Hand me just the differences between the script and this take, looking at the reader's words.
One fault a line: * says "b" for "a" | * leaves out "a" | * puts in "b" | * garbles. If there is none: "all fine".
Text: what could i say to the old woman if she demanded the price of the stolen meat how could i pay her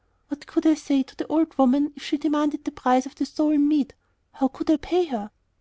all fine